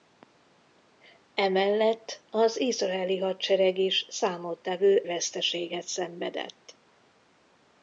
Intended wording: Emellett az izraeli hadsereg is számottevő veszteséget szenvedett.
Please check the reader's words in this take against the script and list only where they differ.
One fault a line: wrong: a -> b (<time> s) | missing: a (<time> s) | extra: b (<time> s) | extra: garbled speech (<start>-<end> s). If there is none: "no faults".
no faults